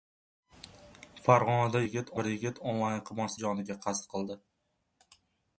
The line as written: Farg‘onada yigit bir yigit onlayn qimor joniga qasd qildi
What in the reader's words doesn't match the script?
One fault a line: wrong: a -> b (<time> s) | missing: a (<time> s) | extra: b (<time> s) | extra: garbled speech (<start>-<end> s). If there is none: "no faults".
no faults